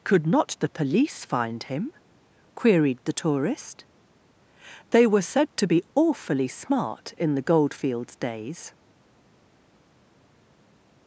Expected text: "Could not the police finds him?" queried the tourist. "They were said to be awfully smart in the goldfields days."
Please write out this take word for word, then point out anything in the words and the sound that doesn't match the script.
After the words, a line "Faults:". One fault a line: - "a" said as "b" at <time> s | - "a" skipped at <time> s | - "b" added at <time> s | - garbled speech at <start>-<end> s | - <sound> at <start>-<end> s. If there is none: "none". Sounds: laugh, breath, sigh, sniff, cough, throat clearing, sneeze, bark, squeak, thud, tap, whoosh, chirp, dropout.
"Could not the police find him?" queried the tourist. "They were said to be awfully smart in the goldfields days."
Faults:
- "finds" said as "find" at 1.2 s